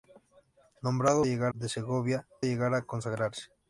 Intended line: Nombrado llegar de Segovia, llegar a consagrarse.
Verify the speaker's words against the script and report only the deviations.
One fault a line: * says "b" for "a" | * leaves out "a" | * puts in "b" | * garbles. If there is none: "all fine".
all fine